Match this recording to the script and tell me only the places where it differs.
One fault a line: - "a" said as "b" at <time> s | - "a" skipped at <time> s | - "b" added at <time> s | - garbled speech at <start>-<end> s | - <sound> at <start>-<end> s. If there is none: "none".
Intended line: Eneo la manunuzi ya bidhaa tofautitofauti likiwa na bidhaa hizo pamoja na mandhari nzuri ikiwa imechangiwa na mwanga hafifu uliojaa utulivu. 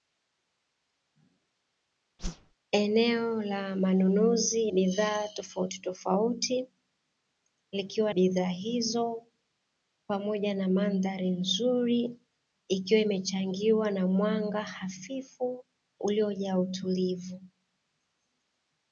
- whoosh at 2.2-2.5 s
- "ya" skipped at 4.7 s
- "na" skipped at 8.1 s